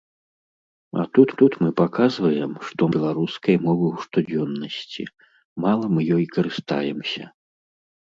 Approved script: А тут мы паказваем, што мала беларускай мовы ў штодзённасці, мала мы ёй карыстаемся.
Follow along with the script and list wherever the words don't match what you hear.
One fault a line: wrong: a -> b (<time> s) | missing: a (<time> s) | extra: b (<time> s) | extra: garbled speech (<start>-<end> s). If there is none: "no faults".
extra: тут (1.4 s)
missing: мала (2.9 s)